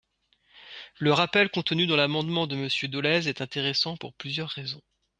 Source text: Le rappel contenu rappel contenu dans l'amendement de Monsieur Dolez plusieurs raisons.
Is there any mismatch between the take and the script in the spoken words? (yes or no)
yes